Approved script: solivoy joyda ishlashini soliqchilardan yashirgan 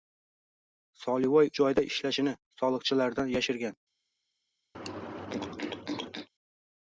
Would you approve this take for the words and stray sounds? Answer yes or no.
no